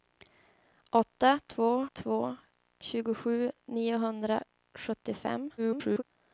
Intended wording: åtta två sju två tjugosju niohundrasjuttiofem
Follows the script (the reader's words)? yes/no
no